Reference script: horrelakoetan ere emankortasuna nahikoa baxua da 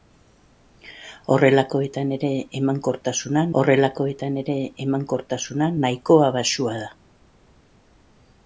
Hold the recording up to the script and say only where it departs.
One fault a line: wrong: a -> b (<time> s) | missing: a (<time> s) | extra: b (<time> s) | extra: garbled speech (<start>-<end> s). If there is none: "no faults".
extra: horrelakoetan ere emankortasuna (3.6 s)